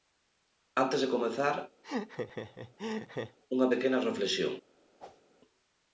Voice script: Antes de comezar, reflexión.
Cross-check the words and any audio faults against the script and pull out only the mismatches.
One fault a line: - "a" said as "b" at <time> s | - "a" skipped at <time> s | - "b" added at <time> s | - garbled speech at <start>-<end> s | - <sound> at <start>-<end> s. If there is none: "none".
- laugh at 1.8-3.4 s
- "unha pequena" added at 3.5 s
- whoosh at 5.0-5.2 s